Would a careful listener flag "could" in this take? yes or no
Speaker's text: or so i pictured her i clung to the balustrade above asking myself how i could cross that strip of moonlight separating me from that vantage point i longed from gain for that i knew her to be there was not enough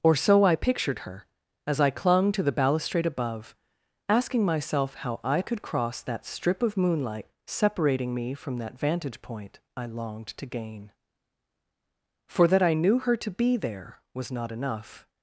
no